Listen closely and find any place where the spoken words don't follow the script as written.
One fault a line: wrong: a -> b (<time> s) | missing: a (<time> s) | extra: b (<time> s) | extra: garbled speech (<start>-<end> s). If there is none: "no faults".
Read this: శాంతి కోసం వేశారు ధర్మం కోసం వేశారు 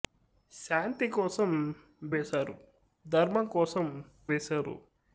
no faults